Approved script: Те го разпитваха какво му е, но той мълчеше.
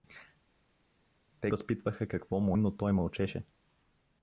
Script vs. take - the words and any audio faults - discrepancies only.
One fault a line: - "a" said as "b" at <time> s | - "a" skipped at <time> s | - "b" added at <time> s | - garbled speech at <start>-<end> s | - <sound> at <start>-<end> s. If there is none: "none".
- "го" skipped at 1.5 s
- "е" skipped at 2.6 s